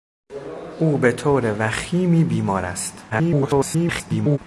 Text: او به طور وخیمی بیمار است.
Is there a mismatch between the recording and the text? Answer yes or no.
yes